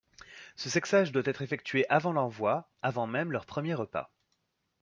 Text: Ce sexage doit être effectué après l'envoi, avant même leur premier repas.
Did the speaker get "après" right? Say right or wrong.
wrong